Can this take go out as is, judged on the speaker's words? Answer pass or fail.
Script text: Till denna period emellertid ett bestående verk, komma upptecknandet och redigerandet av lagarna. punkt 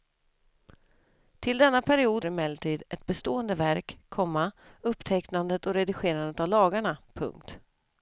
pass